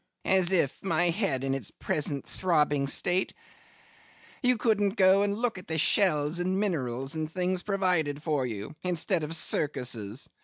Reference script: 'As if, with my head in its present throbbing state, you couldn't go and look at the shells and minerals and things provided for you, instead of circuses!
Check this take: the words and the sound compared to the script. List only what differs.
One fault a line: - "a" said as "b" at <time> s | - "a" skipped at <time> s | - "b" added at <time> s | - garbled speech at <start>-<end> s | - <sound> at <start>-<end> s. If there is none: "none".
- "with" skipped at 0.8 s